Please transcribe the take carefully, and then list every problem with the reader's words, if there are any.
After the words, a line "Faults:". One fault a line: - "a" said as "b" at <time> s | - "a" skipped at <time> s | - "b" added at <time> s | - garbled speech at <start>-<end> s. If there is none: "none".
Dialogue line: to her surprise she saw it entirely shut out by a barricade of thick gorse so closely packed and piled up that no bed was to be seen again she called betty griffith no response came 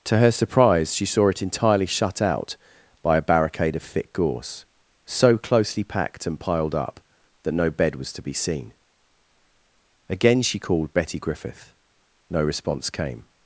to her surprise she saw it entirely shut out by a barricade of thick gorse so closely packed and piled up that no bed was to be seen again she called betty griffith no response came
Faults:
none